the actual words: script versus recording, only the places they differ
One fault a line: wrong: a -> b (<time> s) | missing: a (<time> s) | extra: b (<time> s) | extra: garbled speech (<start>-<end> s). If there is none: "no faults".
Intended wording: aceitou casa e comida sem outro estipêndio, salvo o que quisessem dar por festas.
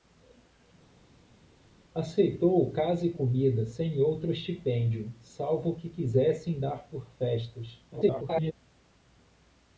extra: garbled speech (7.9-8.5 s)